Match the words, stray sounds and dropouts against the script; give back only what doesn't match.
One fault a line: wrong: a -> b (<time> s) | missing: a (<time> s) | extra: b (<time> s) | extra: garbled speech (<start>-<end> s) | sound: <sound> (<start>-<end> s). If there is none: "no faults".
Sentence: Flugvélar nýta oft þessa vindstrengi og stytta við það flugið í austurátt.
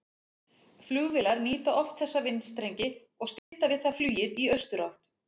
sound: dropout (3.4-3.5 s)